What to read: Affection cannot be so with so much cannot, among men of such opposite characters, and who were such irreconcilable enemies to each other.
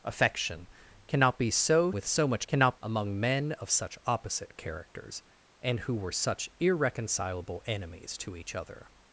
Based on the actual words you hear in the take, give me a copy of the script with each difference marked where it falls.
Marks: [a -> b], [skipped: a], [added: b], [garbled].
Affection cannot be so with so much cannot, among men of such opposite characters, and who were such irreconcilable enemies to each other.